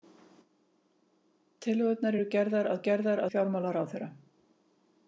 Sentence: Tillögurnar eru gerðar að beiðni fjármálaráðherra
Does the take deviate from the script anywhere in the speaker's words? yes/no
yes